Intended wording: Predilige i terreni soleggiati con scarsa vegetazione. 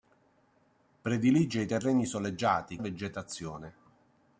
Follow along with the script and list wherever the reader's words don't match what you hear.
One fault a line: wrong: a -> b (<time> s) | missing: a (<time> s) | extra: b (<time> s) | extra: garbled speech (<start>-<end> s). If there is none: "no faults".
missing: con scarsa (2.8 s)